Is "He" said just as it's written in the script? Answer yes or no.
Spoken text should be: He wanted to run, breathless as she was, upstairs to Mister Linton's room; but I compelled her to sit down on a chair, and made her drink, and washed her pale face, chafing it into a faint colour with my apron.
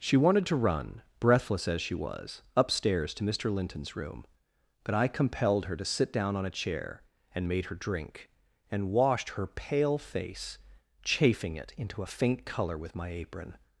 no